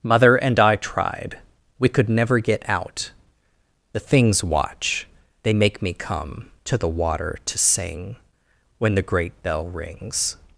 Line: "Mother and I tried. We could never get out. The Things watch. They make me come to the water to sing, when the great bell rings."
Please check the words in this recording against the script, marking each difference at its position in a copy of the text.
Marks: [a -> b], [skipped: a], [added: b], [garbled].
"Mother and I tried. We could never get out. The Things watch. They make me come to the water to sing, when the great bell rings."